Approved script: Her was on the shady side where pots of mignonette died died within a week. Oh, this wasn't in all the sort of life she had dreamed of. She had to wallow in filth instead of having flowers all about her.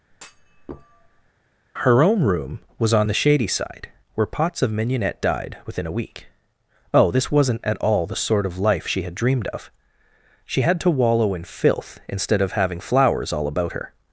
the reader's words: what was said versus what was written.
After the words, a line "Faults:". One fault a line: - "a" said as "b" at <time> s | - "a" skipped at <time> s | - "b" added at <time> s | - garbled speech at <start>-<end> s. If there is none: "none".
Her own room was on the shady side where pots of mignonette died within a week. Oh, this wasn't at all the sort of life she had dreamed of. She had to wallow in filth instead of having flowers all about her.
Faults:
- "own room" added at 2.0 s
- "died" skipped at 5.6 s
- "in" said as "at" at 7.6 s